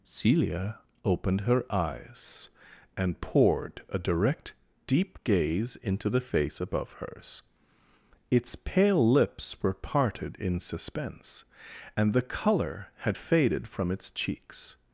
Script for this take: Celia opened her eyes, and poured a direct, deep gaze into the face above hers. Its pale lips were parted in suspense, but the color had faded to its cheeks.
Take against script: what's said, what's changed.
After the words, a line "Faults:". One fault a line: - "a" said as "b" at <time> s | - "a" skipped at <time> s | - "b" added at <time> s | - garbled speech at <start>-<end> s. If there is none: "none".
Celia opened her eyes, and poured a direct, deep gaze into the face above hers. Its pale lips were parted in suspense, and the color had faded from its cheeks.
Faults:
- "but" said as "and" at 12.0 s
- "to" said as "from" at 13.7 s